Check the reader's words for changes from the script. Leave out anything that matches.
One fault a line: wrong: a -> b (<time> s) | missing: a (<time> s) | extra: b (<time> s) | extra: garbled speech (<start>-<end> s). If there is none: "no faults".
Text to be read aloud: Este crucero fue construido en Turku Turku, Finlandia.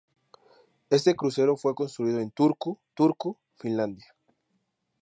no faults